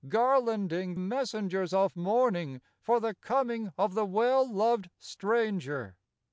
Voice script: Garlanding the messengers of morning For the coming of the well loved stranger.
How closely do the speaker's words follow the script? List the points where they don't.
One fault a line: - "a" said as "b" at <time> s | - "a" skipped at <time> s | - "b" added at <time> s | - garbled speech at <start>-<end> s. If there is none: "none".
- "the" skipped at 0.9 s